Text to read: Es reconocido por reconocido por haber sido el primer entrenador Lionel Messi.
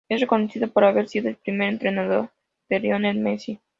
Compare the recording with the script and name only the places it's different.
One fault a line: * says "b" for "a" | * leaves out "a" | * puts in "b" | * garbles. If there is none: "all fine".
* leaves out "reconocido por"
* puts in "de"